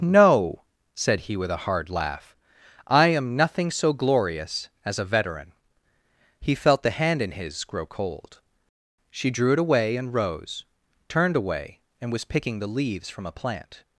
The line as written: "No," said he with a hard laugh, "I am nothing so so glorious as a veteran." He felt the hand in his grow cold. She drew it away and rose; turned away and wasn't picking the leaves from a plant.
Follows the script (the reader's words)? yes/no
no